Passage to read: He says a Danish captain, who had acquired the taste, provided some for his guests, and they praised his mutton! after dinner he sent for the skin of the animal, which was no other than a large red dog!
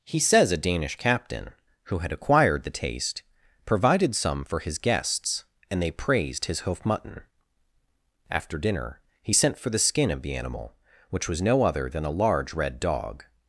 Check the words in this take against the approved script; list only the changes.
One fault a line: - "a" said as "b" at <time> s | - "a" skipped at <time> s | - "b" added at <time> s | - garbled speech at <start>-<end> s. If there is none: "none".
- "hoof" added at 6.6 s